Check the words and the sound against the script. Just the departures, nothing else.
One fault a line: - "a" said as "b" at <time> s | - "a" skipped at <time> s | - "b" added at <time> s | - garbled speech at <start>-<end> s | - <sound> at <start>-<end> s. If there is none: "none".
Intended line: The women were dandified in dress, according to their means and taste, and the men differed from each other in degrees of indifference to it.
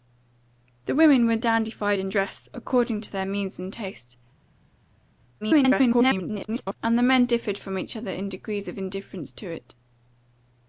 - garbled speech at 5.4-6.8 s